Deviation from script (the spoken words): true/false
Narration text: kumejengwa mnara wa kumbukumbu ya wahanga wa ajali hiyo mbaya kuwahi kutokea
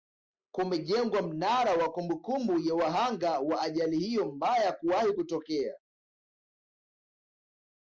false